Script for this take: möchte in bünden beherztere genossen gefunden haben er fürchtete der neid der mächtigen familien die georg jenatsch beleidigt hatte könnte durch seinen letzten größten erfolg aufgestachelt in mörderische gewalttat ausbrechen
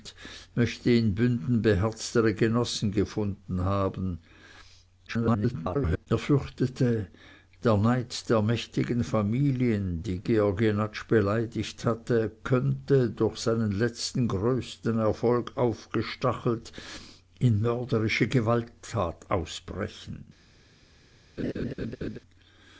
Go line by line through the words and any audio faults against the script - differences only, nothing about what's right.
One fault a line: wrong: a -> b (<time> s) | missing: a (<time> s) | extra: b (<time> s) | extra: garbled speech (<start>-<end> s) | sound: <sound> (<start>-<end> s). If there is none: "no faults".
extra: garbled speech (5.1-6.1 s)
sound: laugh (21.4-22.2 s)